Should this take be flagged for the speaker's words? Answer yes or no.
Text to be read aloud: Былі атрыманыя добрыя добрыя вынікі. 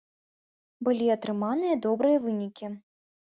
yes